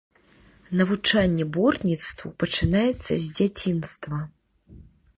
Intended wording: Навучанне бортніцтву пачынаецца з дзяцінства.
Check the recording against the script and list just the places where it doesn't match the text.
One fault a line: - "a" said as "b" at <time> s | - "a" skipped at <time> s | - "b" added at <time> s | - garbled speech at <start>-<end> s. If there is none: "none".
none